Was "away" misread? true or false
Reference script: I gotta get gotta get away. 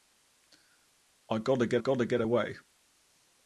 false